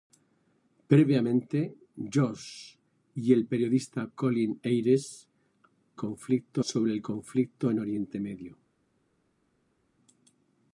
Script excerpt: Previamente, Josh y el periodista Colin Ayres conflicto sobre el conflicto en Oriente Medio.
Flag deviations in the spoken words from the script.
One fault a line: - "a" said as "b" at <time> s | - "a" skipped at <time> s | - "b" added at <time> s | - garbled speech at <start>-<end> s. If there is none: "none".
none